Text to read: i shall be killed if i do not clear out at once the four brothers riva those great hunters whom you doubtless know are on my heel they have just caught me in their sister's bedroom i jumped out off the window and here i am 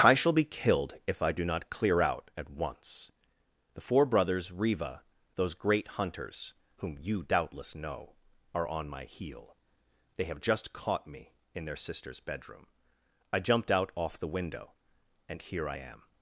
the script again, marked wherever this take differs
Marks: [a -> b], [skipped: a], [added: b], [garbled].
i shall be killed if i do not clear out at once the four brothers riva those great hunters whom you doubtless know are on my heel they have just caught me in their sister's bedroom i jumped out off the window and here i am